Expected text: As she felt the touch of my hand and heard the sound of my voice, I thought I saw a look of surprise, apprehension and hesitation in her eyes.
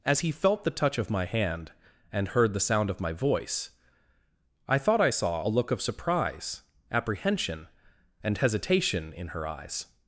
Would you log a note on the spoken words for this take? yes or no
yes